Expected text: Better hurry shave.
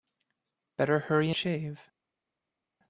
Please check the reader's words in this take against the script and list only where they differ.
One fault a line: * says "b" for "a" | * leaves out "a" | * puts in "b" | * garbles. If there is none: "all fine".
all fine